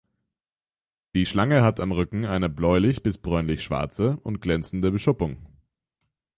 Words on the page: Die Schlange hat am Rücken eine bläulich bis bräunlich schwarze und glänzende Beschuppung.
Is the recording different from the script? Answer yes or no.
no